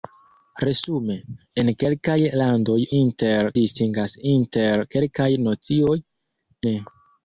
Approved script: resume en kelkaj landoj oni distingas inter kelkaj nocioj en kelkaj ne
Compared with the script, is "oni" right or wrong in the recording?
wrong